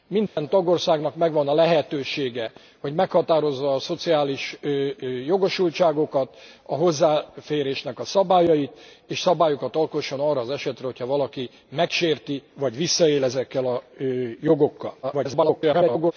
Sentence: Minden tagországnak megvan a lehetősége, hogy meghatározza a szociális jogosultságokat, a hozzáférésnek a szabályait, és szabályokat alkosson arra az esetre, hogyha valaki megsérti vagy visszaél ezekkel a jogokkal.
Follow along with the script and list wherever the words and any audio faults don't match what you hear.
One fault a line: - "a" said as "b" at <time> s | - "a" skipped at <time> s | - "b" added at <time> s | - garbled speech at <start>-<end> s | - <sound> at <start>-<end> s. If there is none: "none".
- dropout at 0.3-0.4 s
- garbled speech at 15.0-16.1 s